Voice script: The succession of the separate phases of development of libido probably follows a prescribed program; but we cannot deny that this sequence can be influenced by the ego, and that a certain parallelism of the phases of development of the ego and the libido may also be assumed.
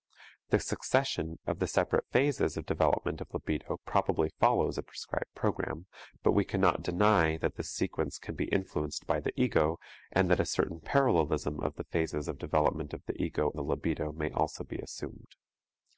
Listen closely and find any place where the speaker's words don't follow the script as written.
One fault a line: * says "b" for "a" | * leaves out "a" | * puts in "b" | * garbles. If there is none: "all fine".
* leaves out "and"